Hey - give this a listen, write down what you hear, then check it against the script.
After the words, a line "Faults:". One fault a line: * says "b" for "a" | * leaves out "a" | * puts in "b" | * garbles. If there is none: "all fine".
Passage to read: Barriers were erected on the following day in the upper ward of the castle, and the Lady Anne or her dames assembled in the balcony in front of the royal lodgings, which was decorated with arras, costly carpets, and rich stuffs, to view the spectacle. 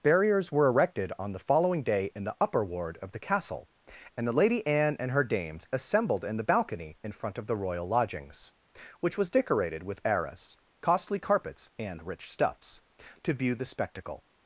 Barriers were erected on the following day in the upper ward of the castle, and the Lady Anne and her dames assembled in the balcony in front of the royal lodgings, which was decorated with arras, costly carpets, and rich stuffs, to view the spectacle.
Faults:
* says "and" for "or"